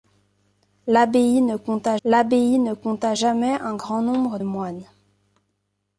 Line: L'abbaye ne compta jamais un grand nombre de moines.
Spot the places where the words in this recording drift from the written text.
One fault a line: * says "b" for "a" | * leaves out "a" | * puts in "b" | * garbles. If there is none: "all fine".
* puts in "l'abbaye ne compta"
* leaves out "de"